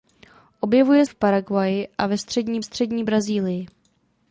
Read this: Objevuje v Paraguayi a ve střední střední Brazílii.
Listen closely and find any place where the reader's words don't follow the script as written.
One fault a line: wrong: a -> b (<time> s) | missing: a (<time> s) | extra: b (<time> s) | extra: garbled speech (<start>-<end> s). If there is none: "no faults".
no faults